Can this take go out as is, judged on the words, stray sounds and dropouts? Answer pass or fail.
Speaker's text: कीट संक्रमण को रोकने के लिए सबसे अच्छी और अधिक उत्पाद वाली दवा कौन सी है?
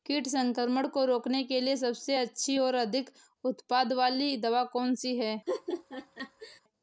fail